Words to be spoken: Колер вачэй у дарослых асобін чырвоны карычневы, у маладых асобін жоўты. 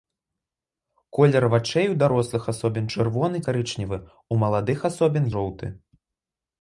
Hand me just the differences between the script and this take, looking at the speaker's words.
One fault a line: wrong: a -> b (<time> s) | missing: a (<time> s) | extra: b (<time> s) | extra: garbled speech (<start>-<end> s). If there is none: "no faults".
no faults